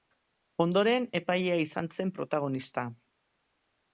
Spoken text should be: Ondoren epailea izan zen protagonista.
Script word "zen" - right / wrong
right